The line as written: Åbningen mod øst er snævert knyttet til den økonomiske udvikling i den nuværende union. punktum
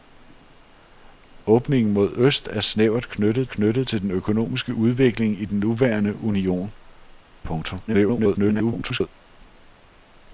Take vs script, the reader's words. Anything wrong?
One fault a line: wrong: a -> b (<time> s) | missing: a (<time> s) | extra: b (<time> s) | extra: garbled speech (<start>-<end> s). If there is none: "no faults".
extra: knyttet (3.5 s)
extra: garbled speech (7.9-9.1 s)